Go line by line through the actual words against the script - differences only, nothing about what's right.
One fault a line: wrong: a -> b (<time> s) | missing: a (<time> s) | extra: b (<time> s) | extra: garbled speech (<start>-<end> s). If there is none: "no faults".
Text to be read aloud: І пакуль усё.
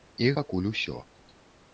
no faults